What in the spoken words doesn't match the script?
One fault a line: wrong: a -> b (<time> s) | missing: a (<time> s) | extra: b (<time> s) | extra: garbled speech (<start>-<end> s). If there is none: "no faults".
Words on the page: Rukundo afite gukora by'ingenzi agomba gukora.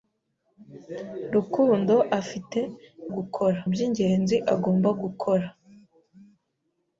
no faults